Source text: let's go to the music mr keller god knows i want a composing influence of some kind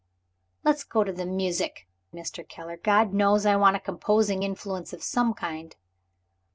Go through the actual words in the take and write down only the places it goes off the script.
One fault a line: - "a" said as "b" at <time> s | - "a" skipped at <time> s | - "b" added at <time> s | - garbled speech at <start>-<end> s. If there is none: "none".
none